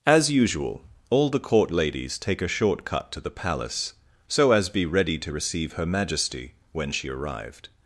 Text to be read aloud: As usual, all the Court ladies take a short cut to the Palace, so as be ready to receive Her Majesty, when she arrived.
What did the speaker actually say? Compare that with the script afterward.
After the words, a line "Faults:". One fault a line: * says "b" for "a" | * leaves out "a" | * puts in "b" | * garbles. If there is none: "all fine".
As usual, all the Court ladies take a short cut to the Palace, so as be ready to receive Her Majesty, when she arrived.
Faults:
all fine